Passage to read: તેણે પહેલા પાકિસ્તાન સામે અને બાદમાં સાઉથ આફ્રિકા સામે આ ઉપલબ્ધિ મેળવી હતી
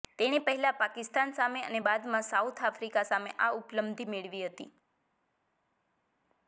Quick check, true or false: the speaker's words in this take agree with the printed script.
true